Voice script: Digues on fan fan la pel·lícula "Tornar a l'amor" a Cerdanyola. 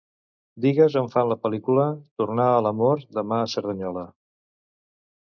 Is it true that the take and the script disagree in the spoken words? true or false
true